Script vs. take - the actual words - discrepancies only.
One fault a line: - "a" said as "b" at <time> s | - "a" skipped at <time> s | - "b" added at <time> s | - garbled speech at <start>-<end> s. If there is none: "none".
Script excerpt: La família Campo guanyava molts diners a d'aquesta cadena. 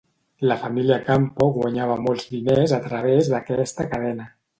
- "través" added at 2.9 s